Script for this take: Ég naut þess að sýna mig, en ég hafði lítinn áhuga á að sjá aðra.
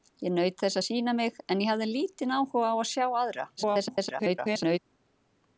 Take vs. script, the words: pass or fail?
fail